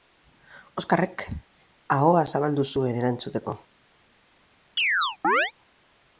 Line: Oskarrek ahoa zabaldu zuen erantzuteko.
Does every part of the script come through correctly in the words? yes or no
yes